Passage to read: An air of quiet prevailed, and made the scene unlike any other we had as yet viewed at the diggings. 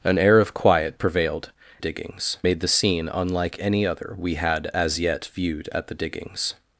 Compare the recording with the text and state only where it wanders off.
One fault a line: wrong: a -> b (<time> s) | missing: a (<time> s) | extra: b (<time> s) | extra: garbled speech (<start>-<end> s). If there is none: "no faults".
wrong: and -> diggings (1.8 s)